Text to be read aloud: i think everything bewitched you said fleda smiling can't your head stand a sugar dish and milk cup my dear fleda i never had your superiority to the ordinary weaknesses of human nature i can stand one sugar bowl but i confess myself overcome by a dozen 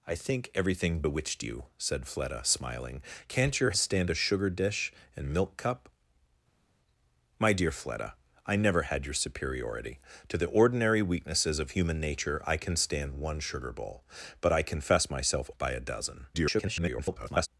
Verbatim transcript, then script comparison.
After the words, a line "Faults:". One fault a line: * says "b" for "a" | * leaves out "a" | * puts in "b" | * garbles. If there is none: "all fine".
i think everything bewitched you said fleda smiling can't your stand a sugar dish and milk cup my dear fleda i never had your superiority to the ordinary weaknesses of human nature i can stand one sugar bowl but i confess myself by a dozen [garbled]
Faults:
* leaves out "head"
* leaves out "overcome"
* garbles